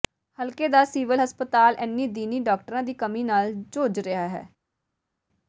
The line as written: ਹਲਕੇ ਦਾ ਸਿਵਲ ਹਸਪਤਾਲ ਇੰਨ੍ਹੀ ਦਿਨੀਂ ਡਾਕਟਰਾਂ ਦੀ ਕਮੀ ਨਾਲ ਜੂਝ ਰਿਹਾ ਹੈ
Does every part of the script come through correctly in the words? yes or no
yes